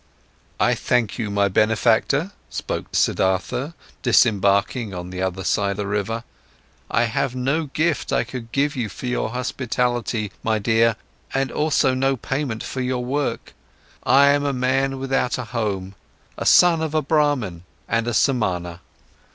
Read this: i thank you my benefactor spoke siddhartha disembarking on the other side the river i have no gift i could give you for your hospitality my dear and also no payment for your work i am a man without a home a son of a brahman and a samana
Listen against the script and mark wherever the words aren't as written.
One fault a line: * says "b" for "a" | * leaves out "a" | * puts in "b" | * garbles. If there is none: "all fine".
all fine